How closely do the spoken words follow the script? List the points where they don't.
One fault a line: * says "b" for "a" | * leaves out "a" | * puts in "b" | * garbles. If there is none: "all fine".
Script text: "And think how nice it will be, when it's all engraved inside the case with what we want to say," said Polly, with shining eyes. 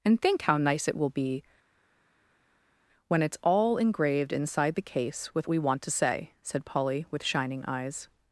* leaves out "what"